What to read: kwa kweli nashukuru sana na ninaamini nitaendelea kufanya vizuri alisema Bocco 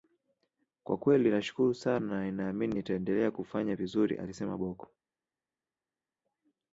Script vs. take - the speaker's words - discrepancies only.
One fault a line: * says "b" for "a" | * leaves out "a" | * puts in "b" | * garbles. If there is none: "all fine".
all fine